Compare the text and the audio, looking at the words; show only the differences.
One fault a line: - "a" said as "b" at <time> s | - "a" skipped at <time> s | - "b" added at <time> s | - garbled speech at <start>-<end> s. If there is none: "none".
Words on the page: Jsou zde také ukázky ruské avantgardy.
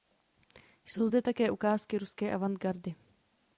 none